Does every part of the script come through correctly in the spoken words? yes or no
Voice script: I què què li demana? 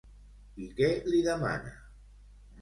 no